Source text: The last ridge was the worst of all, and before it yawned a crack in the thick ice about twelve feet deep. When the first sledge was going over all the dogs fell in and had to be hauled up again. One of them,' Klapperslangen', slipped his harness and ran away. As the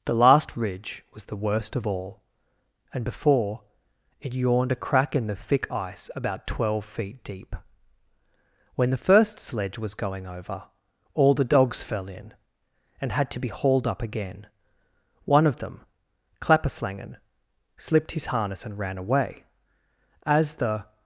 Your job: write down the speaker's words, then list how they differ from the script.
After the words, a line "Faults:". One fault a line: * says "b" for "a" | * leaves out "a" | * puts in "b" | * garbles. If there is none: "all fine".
The last ridge was the worst of all, and before it yawned a crack in the thick ice about twelve feet deep. When the first sledge was going over all the dogs fell in and had to be hauled up again. One of them,' Klapperslangen', slipped his harness and ran away. As the
Faults:
all fine